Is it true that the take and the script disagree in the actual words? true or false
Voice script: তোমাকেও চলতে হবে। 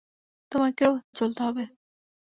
false